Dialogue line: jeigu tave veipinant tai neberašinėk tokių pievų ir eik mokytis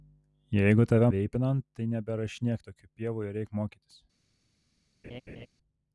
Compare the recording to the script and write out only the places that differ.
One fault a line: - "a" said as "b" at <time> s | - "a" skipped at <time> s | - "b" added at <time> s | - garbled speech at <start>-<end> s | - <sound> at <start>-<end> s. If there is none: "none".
- laugh at 5.0-5.5 s